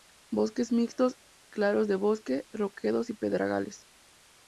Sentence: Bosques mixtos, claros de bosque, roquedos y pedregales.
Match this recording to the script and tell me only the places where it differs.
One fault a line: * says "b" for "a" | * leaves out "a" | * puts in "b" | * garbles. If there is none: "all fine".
all fine